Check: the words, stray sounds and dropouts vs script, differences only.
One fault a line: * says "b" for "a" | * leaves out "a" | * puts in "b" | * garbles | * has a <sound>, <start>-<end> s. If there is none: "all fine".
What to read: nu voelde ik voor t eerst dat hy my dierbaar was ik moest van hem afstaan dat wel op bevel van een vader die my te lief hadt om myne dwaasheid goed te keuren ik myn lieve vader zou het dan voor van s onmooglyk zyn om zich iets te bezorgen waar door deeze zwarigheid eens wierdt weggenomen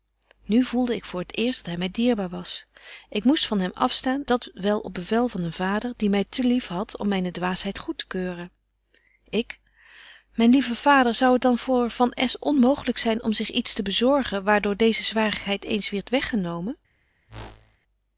* has a whoosh, 17.3-17.8 s